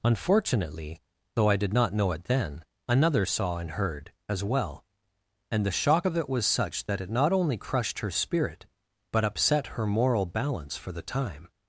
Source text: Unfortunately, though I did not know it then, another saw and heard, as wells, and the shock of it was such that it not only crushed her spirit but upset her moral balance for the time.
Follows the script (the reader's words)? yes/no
no